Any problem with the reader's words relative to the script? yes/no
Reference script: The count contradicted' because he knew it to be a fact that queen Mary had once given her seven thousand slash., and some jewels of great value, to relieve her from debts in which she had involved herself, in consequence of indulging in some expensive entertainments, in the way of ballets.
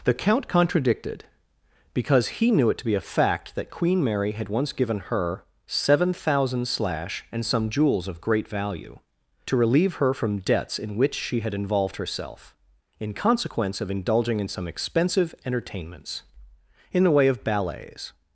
no